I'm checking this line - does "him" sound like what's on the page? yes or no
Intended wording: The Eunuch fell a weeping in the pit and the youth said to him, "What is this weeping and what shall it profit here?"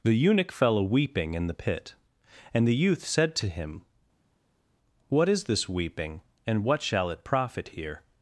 yes